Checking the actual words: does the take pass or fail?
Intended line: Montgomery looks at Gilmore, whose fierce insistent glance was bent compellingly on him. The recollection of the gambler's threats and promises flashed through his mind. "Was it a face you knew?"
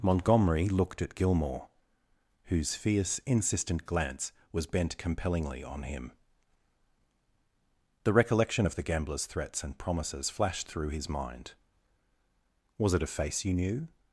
fail